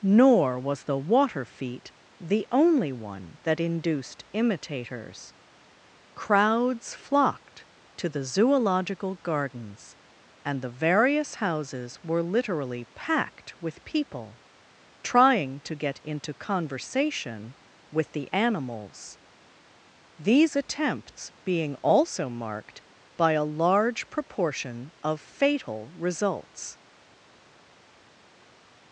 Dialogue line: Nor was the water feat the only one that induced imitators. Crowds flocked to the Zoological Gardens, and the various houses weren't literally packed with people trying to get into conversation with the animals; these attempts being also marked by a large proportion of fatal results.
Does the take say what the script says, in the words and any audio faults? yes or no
no